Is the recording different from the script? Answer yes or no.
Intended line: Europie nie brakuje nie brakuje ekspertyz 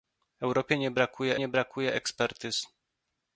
no